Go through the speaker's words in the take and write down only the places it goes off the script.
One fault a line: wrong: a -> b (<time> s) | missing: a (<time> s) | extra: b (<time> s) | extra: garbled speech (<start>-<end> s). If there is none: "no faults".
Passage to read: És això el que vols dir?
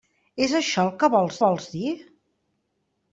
extra: vols (1.5 s)